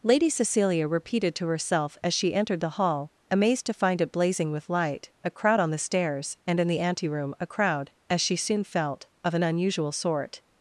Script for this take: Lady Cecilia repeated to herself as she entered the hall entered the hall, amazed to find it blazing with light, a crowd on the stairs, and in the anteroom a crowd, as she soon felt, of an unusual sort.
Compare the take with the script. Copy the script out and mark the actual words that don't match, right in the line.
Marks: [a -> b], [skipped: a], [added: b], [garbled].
Lady Cecilia repeated to herself as she entered the hall [skipped: entered the hall,] amazed to find it blazing with light, a crowd on the stairs, and in the anteroom a crowd, as she soon felt, of an unusual sort.